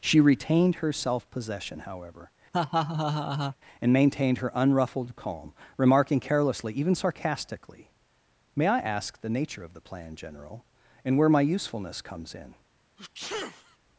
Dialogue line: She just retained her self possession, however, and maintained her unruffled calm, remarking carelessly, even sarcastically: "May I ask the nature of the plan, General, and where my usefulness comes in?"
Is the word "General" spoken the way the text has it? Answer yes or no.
yes